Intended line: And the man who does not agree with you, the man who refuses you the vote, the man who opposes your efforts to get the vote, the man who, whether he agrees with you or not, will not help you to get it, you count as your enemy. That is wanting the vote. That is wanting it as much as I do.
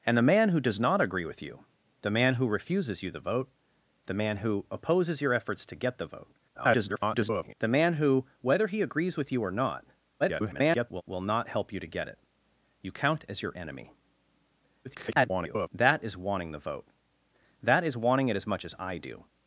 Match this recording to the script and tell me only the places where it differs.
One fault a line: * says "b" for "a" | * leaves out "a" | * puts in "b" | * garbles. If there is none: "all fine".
* garbles
* garbles
* garbles